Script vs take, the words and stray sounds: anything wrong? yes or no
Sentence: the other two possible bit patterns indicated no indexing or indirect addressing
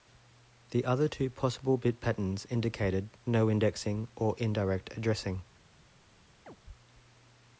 yes